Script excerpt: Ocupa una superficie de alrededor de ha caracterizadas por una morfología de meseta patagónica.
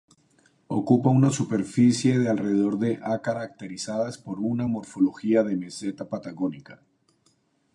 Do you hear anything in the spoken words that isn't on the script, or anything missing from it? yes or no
no